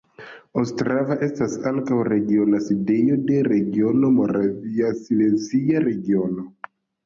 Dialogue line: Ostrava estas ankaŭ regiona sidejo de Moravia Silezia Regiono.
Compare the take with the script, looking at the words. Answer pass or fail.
fail